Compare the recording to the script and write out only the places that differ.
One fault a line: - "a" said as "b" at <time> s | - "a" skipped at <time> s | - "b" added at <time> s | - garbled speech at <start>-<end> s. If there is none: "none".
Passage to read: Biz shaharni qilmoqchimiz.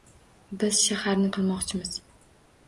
none